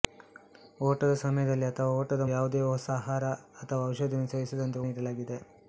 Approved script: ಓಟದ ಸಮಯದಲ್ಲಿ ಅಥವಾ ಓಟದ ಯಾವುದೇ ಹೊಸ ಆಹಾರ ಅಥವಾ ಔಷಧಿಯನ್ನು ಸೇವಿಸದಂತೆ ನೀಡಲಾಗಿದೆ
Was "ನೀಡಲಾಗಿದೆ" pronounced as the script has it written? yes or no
yes